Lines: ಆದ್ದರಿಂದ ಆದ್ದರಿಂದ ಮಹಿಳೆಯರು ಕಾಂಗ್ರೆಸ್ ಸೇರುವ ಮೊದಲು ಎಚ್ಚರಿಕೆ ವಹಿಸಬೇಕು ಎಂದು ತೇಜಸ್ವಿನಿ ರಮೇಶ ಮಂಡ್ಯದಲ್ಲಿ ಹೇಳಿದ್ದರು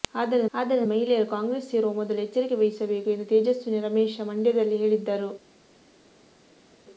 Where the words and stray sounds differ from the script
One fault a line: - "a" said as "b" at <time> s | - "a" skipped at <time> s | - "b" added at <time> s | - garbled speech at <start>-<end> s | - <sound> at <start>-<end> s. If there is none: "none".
none